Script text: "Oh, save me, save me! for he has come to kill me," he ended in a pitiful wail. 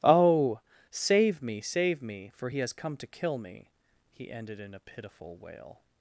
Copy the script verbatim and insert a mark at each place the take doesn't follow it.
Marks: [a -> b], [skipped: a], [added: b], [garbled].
"Oh, save me, save me! for he has come to kill me," he ended in a pitiful wail.